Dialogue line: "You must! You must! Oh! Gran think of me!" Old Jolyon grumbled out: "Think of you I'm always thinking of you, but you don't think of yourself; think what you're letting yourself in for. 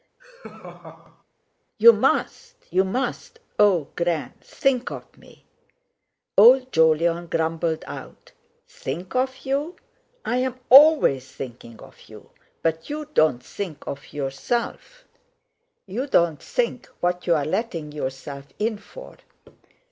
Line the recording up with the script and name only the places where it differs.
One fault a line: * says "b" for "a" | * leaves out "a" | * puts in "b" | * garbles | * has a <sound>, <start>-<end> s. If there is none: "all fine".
* has a laugh, 0.2-1.2 s
* puts in "you don't"